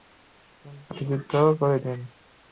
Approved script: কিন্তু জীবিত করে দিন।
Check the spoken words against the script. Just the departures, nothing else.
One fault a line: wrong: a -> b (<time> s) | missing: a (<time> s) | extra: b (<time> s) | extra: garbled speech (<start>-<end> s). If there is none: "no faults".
no faults